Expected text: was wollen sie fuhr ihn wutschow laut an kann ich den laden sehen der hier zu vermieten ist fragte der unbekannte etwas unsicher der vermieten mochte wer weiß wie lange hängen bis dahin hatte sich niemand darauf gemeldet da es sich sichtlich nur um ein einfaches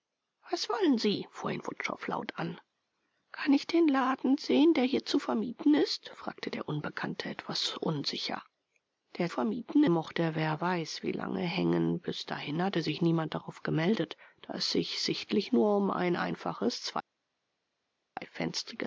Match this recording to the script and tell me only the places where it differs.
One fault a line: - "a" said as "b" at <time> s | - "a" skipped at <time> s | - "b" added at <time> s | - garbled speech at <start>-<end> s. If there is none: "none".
none